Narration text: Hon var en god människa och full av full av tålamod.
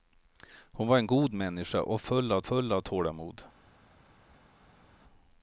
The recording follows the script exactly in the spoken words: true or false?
true